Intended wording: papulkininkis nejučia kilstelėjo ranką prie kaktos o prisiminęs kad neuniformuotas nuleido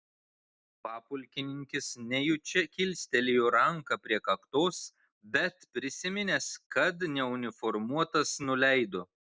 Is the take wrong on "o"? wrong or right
wrong